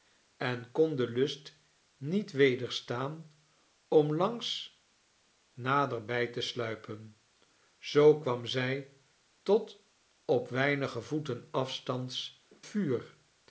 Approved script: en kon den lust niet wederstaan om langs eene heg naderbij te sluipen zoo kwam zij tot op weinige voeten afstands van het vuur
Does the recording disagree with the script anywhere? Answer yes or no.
yes